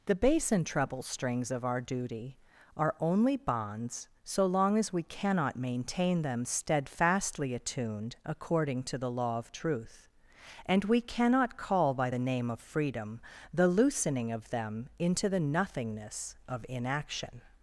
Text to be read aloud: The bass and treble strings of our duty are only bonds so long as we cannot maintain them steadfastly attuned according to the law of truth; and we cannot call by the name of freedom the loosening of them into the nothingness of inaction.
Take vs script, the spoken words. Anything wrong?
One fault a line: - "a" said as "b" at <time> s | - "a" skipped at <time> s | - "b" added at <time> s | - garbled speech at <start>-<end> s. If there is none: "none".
none